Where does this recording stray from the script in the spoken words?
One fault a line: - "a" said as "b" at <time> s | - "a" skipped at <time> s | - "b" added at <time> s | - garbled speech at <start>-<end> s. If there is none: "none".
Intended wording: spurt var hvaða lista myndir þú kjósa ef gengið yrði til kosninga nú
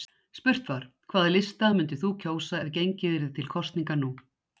none